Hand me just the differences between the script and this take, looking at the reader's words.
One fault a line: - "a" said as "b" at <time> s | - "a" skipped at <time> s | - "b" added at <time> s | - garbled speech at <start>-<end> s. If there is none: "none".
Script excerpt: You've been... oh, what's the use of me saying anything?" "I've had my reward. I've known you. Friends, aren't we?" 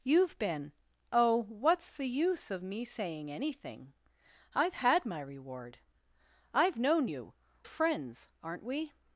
none